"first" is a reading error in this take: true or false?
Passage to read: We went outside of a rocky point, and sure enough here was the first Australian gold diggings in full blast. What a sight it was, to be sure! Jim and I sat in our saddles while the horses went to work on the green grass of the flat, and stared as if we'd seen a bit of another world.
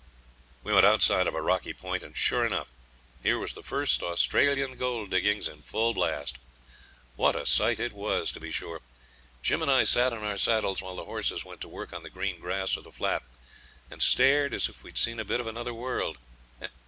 false